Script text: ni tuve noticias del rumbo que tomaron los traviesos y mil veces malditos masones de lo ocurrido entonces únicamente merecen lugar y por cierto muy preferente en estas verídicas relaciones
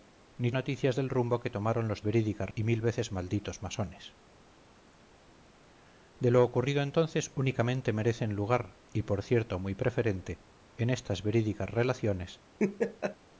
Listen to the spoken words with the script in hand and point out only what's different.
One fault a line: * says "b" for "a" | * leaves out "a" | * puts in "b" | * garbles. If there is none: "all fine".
* leaves out "tuve"
* says "verídicas" for "traviesos"